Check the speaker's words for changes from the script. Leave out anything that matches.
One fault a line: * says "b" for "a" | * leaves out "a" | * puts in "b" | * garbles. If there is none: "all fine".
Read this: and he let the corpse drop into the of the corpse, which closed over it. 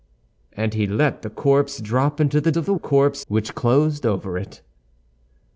all fine